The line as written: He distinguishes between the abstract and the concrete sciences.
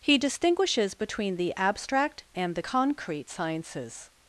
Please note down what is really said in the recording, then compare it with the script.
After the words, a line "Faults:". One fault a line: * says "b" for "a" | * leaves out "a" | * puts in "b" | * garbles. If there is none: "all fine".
He distinguishes between the abstract and the concrete sciences.
Faults:
all fine